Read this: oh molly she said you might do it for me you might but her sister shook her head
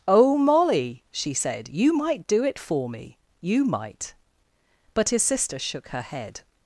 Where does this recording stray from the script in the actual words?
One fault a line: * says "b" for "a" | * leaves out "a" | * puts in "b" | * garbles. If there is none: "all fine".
* says "his" for "her"